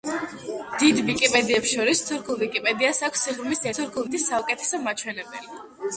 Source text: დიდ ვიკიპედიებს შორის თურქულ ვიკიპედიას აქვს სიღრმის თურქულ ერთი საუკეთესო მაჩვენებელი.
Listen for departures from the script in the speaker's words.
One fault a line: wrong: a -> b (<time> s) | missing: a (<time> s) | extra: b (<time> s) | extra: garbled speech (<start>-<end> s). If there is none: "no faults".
no faults